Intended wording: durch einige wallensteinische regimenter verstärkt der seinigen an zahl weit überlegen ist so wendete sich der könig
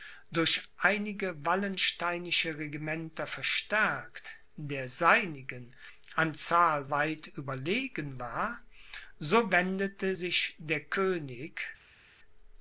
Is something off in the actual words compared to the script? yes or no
yes